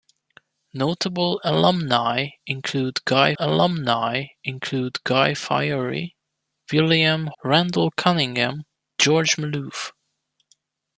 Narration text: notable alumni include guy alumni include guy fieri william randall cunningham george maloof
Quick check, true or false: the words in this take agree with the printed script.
true